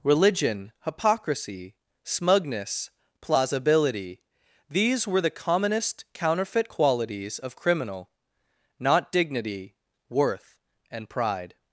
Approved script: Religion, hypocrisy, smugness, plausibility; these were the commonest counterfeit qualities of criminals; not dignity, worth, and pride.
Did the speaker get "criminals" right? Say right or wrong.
wrong